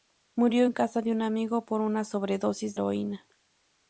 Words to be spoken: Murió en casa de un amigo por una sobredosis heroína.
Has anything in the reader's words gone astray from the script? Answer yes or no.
no